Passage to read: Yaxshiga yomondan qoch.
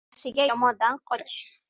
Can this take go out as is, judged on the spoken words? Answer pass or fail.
pass